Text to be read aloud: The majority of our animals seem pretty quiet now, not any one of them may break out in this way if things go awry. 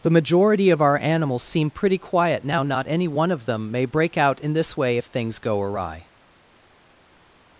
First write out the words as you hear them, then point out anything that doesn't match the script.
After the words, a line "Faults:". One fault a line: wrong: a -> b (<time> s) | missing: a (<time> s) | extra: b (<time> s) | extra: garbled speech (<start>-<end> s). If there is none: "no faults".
The majority of our animals seem pretty quiet now, not any one of them may break out in this way if things go awry.
Faults:
no faults